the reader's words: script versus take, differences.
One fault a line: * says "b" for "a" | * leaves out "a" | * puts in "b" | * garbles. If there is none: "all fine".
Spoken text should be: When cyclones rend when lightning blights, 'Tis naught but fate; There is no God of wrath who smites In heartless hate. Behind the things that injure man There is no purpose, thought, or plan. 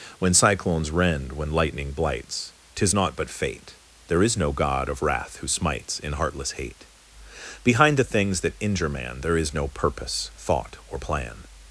all fine